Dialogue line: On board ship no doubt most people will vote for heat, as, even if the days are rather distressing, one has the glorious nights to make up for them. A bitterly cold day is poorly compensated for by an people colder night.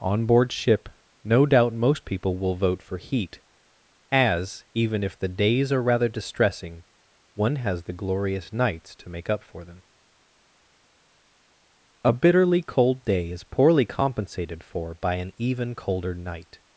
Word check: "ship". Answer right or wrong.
right